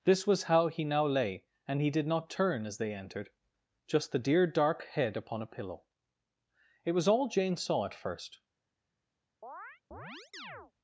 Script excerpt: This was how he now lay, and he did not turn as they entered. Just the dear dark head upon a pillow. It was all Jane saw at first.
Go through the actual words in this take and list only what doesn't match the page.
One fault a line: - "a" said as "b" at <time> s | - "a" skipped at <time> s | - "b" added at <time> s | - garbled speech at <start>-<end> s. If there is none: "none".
none